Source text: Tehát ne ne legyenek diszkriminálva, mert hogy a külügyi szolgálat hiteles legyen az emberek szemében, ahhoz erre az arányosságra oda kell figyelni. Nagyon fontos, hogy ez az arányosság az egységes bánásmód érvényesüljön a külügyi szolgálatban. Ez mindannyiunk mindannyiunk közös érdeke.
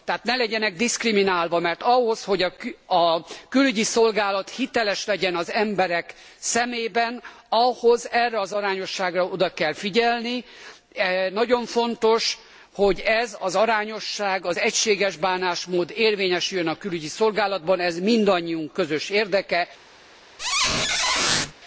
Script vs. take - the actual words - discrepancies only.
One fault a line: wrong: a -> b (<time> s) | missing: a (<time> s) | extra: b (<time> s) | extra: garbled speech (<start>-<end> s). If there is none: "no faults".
missing: ne (0.3 s)
extra: ahhoz (1.8 s)
missing: mindannyiunk (18.7 s)